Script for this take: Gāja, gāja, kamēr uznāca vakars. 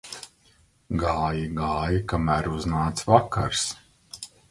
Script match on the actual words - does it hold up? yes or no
yes